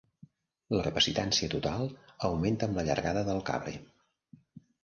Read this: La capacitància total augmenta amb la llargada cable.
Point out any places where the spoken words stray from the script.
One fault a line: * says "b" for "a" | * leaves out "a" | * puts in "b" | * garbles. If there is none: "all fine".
* puts in "del"